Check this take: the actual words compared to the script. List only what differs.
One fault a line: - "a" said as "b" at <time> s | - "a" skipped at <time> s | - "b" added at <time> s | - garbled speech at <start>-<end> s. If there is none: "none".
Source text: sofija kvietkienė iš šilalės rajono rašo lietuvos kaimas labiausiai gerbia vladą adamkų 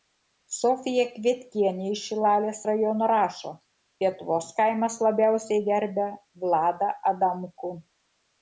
none